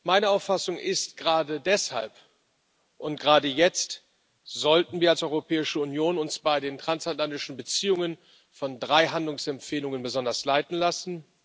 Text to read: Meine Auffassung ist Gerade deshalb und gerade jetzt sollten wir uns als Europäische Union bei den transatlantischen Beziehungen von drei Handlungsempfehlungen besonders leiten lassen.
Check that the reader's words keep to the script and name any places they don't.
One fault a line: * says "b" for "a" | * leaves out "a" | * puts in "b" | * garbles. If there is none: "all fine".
all fine